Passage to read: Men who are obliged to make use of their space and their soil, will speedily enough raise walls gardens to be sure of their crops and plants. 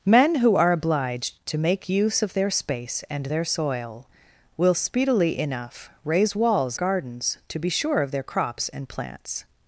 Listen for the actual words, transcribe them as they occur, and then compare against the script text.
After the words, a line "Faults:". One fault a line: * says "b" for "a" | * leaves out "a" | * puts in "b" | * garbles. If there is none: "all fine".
Men who are obliged to make use of their space and their soil, will speedily enough raise walls gardens to be sure of their crops and plants.
Faults:
all fine